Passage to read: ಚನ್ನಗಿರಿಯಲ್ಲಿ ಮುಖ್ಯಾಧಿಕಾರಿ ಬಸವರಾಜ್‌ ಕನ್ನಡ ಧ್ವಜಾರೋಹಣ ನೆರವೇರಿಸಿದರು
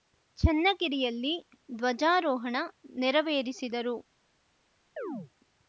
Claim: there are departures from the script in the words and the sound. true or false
true